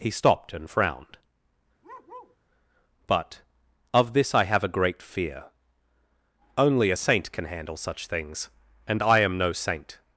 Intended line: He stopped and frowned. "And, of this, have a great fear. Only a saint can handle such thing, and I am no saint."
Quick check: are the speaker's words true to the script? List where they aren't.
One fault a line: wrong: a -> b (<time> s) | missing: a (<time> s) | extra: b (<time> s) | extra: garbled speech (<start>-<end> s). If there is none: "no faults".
wrong: And -> But (3.1 s)
extra: I (4.3 s)
wrong: thing -> things (8.1 s)